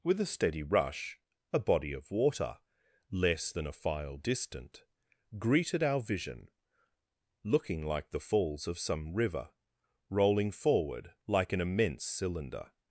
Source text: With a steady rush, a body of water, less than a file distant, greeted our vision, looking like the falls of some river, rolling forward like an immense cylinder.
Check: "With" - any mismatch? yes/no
no